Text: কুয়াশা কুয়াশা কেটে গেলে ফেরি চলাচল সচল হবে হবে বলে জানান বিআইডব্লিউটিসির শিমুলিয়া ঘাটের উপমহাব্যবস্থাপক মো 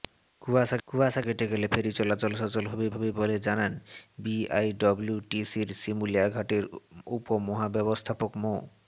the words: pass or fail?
pass